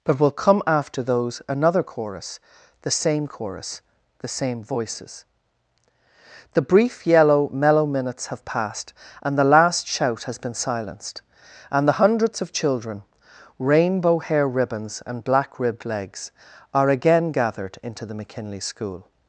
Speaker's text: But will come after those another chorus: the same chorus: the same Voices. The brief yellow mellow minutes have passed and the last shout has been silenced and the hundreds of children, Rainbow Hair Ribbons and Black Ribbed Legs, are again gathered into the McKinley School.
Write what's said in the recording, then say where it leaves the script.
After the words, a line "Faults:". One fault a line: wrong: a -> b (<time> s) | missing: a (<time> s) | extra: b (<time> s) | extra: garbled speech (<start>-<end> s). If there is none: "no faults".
But will come after those another chorus: the same chorus: the same Voices. The brief yellow mellow minutes have passed and the last shout has been silenced and the hundreds of children, Rainbow Hair Ribbons and Black Ribbed Legs, are again gathered into the McKinley School.
Faults:
no faults